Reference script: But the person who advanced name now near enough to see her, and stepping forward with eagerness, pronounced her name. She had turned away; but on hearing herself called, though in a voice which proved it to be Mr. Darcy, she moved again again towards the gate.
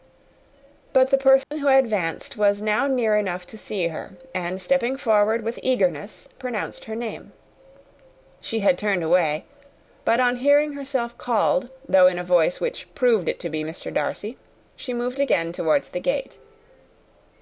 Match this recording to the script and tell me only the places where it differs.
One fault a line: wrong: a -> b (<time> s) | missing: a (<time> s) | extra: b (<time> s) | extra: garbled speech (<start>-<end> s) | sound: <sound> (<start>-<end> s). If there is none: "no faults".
sound: dropout (1.4-1.5 s)
wrong: name -> was (2.4 s)
missing: again (15.5 s)